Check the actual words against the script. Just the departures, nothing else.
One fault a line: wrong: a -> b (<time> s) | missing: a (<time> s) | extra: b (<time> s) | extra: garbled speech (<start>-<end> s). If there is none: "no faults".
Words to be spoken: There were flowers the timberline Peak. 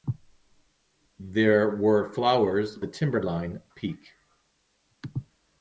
no faults